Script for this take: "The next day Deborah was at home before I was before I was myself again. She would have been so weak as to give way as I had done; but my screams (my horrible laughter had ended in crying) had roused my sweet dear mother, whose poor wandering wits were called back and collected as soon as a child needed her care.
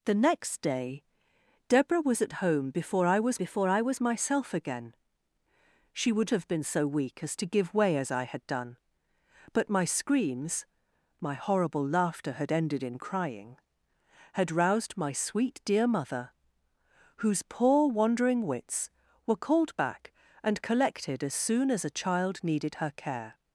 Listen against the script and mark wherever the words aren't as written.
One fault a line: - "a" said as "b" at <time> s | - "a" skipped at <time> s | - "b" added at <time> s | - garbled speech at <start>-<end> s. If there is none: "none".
none